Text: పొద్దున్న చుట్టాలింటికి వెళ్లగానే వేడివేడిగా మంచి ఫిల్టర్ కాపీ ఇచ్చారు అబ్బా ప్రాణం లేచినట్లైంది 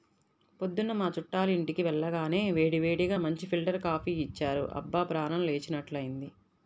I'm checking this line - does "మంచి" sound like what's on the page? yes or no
yes